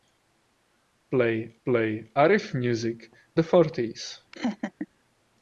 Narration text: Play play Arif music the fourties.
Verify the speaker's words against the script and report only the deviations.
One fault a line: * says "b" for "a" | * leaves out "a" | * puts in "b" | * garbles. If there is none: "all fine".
all fine